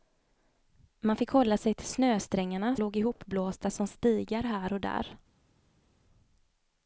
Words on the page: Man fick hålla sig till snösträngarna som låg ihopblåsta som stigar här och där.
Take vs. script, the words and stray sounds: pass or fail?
fail